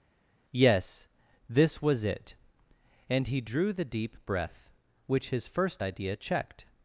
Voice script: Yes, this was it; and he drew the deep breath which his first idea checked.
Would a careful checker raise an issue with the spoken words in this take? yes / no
no